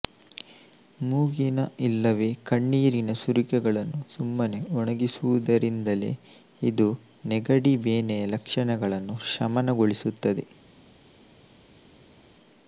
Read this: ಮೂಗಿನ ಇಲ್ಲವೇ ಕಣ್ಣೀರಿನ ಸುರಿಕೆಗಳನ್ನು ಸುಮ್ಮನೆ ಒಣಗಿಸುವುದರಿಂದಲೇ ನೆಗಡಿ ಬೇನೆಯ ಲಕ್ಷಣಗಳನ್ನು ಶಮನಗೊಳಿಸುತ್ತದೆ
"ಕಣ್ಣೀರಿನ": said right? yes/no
yes